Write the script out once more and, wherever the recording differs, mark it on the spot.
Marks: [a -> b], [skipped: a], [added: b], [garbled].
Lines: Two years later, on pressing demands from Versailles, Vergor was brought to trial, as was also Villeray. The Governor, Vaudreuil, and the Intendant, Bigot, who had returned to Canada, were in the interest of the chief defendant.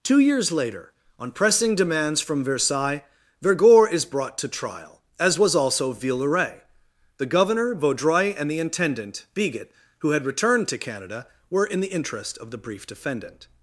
Two years later, on pressing demands from Versailles, Vergor [was -> is] brought to trial, as was also Villeray. The Governor, Vaudreuil, and the Intendant, Bigot, who had returned to Canada, were in the interest of the [chief -> brief] defendant.